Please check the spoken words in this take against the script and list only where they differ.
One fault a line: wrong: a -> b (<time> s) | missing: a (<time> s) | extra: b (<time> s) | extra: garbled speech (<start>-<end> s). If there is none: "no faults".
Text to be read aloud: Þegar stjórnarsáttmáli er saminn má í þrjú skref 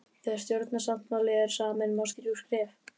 no faults